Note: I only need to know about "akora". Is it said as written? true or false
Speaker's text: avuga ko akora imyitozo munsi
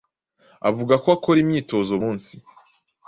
true